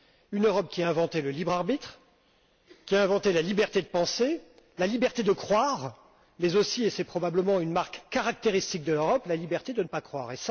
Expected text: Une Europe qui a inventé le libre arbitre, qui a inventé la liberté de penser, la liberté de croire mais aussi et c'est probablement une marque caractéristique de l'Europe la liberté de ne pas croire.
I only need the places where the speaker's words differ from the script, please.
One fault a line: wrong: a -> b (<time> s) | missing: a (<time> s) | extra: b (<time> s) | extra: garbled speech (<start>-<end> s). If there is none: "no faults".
no faults